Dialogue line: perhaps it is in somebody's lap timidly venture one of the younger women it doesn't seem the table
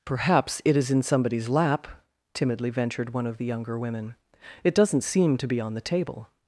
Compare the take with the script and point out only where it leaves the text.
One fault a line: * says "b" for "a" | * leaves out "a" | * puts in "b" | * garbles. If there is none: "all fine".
* says "ventured" for "venture"
* puts in "to be on"